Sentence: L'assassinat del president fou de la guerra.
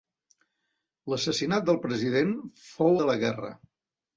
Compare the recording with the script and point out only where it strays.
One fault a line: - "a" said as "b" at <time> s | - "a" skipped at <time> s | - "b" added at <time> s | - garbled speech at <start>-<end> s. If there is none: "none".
none